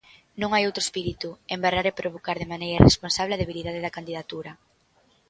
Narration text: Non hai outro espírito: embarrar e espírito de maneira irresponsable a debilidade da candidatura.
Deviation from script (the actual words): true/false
true